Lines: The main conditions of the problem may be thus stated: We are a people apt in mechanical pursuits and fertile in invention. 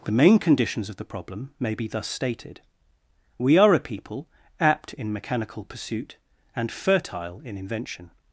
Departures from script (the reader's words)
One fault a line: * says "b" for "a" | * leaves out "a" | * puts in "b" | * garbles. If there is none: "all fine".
* says "pursuit" for "pursuits"